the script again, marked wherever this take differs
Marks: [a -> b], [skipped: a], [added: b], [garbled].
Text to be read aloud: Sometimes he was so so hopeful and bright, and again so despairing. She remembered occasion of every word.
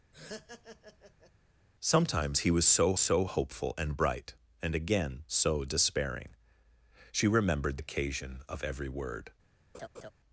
Sometimes he was so so hopeful and bright, and again so despairing. She remembered occasion of every word.